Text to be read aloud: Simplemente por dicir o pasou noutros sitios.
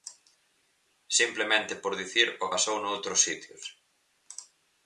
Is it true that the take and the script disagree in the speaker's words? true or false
false